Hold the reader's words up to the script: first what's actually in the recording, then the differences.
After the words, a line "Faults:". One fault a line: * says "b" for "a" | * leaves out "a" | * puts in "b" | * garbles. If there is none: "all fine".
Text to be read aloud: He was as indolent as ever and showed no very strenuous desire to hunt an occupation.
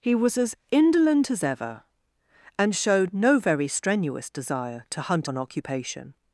He was as indolent as ever and showed no very strenuous desire to hunt an occupation.
Faults:
all fine